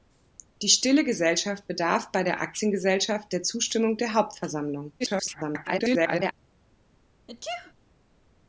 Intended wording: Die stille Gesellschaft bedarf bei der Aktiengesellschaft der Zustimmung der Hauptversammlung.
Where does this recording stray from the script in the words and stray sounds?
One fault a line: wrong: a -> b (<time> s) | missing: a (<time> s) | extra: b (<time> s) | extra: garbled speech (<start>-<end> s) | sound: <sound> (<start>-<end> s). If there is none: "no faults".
extra: garbled speech (5.0-6.3 s)
sound: sneeze (7.3-7.7 s)